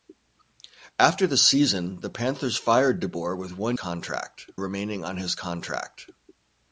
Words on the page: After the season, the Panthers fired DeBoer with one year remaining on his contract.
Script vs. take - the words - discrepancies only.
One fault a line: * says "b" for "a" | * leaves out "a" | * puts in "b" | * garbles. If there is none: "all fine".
* says "contract" for "year"